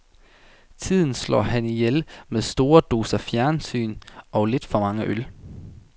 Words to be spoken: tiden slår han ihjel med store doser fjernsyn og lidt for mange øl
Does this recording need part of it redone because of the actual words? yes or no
no